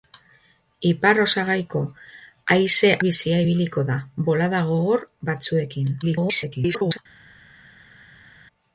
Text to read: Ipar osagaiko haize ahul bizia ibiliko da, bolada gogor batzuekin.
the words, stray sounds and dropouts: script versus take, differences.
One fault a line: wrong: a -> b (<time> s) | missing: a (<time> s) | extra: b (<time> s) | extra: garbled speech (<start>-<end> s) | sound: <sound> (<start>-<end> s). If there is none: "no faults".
missing: ahul (2.9 s)
extra: garbled speech (6.0-7.0 s)